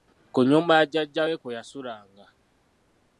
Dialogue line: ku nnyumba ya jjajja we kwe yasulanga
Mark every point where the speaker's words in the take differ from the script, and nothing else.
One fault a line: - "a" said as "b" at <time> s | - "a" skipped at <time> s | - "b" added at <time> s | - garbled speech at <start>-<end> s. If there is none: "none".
none